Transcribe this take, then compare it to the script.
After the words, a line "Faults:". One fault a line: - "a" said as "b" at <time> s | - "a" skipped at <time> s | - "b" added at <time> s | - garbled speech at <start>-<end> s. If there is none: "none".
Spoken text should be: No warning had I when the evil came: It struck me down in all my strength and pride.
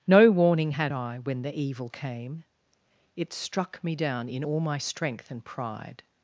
No warning had I when the evil came: It struck me down in all my strength and pride.
Faults:
none